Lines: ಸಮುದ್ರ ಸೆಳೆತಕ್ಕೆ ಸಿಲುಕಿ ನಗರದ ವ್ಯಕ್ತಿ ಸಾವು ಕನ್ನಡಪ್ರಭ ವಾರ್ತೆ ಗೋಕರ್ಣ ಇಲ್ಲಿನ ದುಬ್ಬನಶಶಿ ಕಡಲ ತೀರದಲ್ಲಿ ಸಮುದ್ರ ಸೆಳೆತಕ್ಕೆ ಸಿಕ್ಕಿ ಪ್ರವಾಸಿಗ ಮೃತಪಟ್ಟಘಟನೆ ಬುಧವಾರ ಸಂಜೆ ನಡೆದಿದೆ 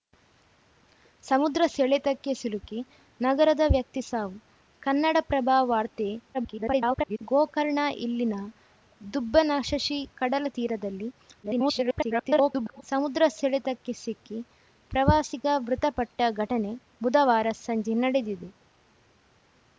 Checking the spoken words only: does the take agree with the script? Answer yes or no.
no